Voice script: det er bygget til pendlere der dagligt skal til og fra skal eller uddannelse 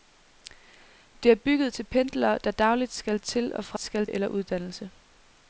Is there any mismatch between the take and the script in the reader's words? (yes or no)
no